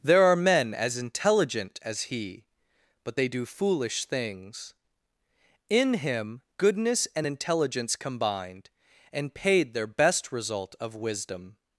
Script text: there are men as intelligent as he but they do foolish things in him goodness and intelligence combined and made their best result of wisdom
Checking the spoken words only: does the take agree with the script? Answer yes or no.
no